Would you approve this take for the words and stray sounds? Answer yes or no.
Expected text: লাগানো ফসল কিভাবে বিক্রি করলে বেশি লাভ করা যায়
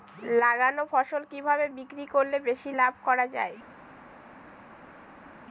yes